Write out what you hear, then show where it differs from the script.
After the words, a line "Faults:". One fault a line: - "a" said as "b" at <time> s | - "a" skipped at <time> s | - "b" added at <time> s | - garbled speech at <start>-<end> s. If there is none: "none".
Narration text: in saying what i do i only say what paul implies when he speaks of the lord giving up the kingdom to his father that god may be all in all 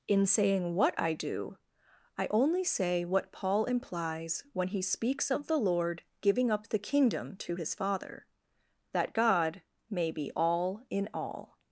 in saying what i do i only say what paul implies when he speaks of the lord giving up the kingdom to his father that god may be all in all
Faults:
none